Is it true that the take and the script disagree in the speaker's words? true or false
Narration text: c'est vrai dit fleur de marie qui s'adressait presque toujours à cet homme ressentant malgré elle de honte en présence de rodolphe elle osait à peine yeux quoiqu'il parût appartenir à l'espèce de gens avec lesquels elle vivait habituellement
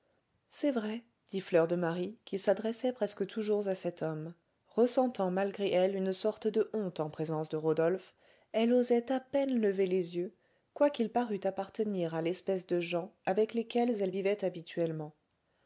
true